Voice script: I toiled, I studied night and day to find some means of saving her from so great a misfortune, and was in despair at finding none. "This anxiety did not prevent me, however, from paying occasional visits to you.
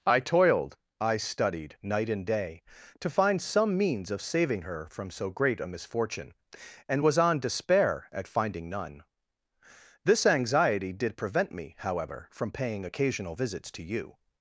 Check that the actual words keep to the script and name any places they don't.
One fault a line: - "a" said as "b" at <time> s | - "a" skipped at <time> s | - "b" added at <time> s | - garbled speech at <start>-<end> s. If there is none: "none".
- "in" said as "on" at 7.2 s
- "not" skipped at 11.2 s